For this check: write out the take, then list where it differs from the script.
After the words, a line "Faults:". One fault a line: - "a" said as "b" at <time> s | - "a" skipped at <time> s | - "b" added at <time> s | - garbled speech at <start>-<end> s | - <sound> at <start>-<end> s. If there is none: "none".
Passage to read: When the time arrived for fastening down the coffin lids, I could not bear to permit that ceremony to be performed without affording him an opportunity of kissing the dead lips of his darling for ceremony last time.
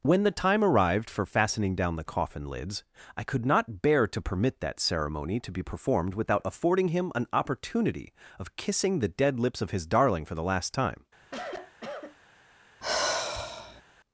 When the time arrived for fastening down the coffin lids, I could not bear to permit that ceremony to be performed without affording him an opportunity of kissing the dead lips of his darling for the last time.
Faults:
- "ceremony" said as "the" at 10.3 s
- cough at 11.2-12.2 s
- sigh at 12.8-13.8 s